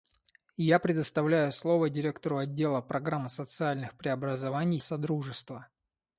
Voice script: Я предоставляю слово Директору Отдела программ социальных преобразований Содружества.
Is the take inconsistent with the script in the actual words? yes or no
no